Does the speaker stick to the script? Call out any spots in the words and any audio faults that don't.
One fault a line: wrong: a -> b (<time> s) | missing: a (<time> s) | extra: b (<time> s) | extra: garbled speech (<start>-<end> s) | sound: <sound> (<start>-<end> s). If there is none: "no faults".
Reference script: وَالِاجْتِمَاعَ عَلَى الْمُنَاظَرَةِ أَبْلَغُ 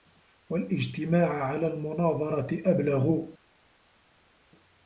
no faults